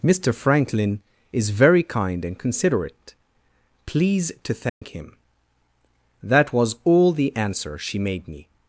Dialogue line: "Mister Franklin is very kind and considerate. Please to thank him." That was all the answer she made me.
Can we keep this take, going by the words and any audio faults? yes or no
no